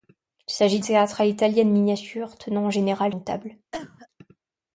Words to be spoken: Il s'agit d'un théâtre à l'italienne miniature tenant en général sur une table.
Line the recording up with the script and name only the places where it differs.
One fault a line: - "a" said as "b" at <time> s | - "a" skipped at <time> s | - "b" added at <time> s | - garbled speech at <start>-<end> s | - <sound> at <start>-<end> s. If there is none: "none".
- "d'un" skipped at 0.8 s
- "sur" skipped at 3.1 s
- cough at 3.7-4.1 s